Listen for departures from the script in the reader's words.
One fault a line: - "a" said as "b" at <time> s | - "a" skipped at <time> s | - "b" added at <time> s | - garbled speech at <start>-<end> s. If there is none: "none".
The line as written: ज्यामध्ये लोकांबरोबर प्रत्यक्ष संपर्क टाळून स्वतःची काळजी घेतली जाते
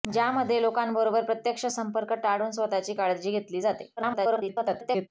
- garbled speech at 4.0-5.1 s